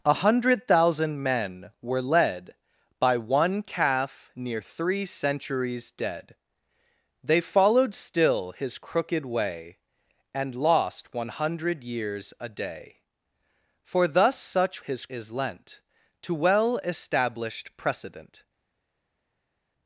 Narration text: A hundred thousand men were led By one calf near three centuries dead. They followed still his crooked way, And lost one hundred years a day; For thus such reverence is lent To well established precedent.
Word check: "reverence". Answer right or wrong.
wrong